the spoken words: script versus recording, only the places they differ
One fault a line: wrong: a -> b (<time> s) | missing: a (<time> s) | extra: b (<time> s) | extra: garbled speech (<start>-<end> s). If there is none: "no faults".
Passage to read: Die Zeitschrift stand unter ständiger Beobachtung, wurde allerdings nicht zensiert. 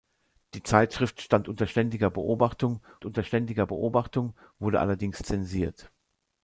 extra: unter ständiger Beobachtung (3.0 s)
missing: nicht (5.2 s)